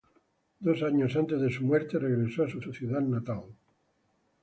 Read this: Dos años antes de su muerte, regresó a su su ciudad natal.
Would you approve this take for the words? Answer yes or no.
yes